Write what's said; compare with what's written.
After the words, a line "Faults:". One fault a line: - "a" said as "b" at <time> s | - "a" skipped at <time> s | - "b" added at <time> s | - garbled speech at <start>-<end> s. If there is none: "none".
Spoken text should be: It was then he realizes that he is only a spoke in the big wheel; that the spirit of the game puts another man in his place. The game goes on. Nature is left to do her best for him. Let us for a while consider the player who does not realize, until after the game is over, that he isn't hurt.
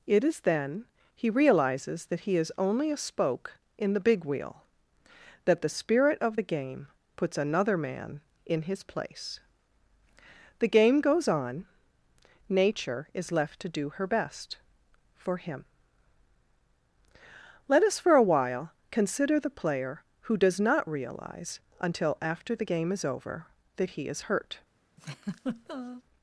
It is then he realizes that he is only a spoke in the big wheel; that the spirit of the game puts another man in his place. The game goes on. Nature is left to do her best for him. Let us for a while consider the player who does not realize, until after the game is over, that he is hurt.
Faults:
- "was" said as "is" at 0.2 s
- "isn't" said as "is" at 24.1 s